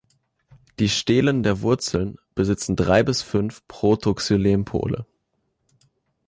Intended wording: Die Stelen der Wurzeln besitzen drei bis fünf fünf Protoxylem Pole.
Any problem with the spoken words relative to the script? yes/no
yes